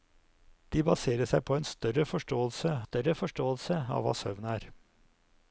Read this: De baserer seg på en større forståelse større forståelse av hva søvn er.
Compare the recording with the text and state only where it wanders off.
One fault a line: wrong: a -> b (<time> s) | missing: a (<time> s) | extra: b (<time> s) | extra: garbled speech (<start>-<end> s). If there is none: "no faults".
no faults